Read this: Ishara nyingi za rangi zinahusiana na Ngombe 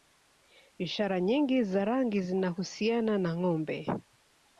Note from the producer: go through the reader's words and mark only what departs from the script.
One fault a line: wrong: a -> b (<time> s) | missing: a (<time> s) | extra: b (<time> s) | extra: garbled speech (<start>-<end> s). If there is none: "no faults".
no faults